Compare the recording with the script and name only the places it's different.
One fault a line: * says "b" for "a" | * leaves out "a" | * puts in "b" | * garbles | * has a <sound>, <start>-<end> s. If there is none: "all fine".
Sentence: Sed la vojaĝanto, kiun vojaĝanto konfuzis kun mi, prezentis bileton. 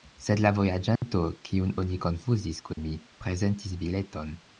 * has a dropout, 1.0-1.0 s
* says "oni" for "vojaĝanto"
* has a dropout, 2.7-2.8 s